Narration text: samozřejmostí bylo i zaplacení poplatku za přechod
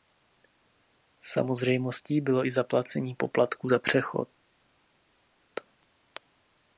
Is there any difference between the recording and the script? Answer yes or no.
no